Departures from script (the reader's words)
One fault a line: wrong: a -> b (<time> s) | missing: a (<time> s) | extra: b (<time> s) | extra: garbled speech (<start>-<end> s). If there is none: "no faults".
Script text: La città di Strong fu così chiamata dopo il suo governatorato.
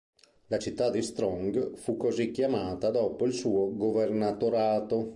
no faults